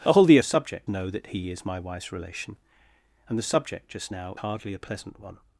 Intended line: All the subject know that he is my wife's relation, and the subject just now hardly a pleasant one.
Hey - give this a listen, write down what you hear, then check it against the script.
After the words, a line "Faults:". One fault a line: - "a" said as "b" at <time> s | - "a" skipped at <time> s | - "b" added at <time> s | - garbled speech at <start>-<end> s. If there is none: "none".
All the subject know that he is my wife's relation, and the subject just now hardly a pleasant one.
Faults:
none